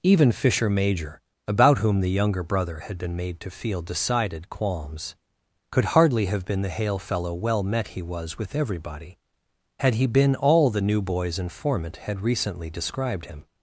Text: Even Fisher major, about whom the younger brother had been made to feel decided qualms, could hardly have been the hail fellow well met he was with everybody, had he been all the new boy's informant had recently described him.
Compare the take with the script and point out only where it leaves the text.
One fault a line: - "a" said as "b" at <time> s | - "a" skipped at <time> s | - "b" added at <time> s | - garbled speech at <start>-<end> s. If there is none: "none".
none